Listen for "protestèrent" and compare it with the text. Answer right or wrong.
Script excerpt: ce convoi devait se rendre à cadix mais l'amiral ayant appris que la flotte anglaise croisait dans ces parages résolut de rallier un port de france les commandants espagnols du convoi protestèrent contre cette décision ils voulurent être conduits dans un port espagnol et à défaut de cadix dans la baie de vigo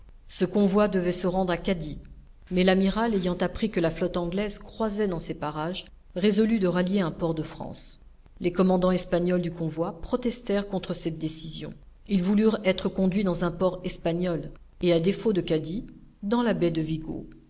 right